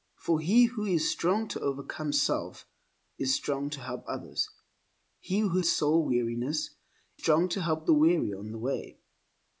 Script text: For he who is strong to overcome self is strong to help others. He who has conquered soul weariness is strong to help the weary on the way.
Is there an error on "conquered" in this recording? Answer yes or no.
yes